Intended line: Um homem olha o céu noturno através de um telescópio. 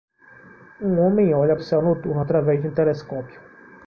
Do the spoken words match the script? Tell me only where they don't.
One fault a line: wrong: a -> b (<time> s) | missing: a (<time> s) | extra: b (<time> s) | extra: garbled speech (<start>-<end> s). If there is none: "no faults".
no faults